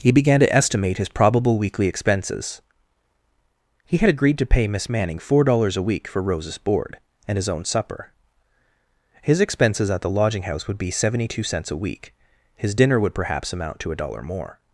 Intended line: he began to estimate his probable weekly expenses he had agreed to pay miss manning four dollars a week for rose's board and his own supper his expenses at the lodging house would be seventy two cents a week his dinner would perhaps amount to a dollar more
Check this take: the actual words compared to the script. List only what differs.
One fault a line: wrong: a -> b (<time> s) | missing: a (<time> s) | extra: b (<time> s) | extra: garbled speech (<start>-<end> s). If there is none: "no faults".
no faults